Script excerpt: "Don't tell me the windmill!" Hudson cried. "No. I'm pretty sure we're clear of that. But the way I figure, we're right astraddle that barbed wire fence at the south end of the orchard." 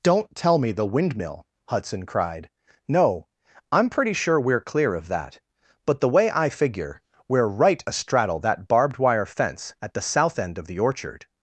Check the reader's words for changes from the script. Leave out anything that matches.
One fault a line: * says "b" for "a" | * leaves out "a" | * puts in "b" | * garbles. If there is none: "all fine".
all fine